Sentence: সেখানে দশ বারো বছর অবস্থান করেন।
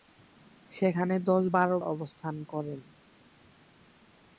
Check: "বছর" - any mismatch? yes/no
yes